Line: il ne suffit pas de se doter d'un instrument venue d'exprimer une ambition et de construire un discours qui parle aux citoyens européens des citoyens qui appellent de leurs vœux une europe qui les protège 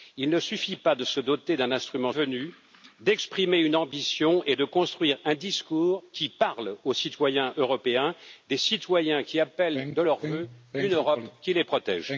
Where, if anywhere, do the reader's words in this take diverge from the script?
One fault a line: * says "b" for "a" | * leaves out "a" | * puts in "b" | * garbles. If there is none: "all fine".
all fine